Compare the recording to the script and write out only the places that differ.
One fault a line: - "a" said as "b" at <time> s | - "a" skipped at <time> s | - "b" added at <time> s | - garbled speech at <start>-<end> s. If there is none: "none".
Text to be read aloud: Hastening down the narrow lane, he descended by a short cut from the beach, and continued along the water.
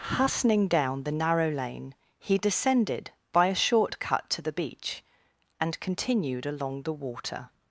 - "from" said as "to" at 4.3 s